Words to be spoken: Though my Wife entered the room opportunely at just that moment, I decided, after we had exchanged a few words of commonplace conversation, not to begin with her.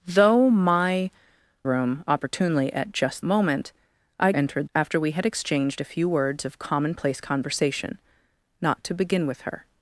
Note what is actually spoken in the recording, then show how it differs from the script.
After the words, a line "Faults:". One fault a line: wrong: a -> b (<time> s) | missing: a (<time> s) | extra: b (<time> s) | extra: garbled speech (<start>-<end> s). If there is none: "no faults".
Though my Room opportunely at just moment, I entered, after we had exchanged a few words of commonplace conversation, not to begin with her.
Faults:
missing: Wife entered the (1.1 s)
missing: that (3.2 s)
wrong: decided -> entered (4.3 s)